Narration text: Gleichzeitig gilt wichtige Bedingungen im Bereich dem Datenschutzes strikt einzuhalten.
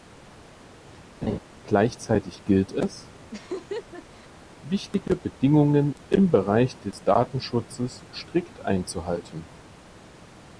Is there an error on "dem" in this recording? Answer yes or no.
yes